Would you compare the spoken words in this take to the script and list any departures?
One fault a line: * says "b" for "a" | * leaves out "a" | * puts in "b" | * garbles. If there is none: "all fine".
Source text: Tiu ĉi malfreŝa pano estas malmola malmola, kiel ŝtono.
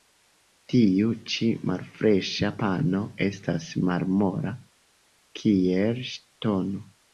* leaves out "malmola"